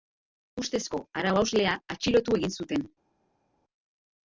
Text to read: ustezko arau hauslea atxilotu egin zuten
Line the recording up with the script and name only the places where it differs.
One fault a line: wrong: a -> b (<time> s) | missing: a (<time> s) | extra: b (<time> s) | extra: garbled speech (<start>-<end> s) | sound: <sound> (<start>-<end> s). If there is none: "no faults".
no faults